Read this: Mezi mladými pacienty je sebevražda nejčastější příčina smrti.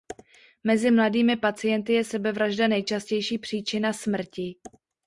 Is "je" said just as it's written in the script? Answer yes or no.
yes